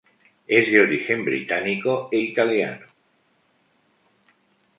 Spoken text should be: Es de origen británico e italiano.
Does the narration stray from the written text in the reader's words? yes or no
no